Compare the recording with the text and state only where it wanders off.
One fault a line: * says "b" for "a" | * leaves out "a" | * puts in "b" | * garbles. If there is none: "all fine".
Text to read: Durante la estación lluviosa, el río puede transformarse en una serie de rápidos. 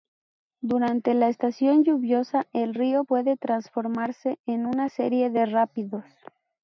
all fine